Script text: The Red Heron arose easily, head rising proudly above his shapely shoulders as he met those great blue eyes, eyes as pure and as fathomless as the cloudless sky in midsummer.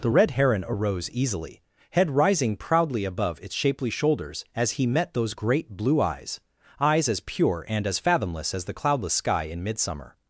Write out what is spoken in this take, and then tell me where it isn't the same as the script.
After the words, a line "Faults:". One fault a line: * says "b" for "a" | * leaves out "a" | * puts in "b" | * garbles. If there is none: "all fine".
The Red Heron arose easily, head rising proudly above its shapely shoulders as he met those great blue eyes, eyes as pure and as fathomless as the cloudless sky in midsummer.
Faults:
* says "its" for "his"